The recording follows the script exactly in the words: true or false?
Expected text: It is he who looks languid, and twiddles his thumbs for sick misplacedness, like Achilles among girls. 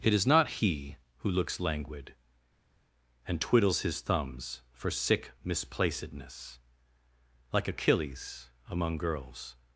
false